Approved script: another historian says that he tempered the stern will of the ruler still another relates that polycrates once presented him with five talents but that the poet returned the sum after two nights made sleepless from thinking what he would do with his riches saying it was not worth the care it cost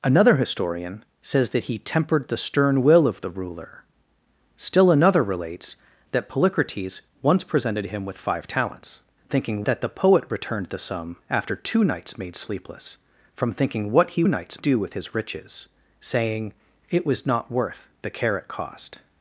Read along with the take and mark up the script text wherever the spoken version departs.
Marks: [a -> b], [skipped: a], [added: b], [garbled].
another historian says that he tempered the stern will of the ruler still another relates that polycrates once presented him with five talents [but -> thinking] that the poet returned the sum after two nights made sleepless from thinking what he [would -> nights] do with his riches saying it was not worth the care it cost